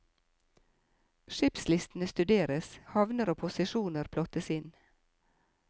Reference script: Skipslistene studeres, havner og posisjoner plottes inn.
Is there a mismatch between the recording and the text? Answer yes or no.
no